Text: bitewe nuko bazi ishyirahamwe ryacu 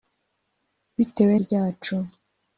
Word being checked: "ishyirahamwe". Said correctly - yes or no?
no